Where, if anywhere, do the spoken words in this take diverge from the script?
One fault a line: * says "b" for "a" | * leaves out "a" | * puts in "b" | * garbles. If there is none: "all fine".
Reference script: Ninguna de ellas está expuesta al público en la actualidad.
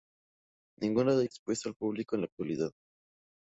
* leaves out "ellas está"